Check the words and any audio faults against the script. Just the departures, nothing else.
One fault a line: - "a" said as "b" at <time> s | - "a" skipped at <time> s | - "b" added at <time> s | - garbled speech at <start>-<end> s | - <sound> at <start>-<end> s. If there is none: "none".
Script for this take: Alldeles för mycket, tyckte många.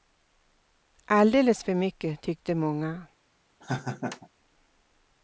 - laugh at 3.6-4.3 s